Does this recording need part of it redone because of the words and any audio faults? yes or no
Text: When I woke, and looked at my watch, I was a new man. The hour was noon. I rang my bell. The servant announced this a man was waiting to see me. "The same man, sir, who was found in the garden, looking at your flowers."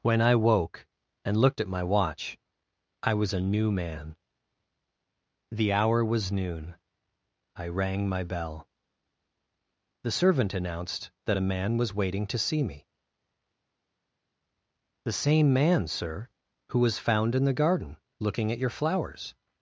yes